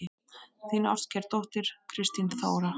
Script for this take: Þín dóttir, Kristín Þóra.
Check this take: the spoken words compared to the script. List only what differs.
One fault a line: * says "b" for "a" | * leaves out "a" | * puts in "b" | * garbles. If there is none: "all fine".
* puts in "ástkær"